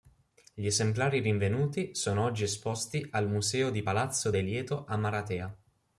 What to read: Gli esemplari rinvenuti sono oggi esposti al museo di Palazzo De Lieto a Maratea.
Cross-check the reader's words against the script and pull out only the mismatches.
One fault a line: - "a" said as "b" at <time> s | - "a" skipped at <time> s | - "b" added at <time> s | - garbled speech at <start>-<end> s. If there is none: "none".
none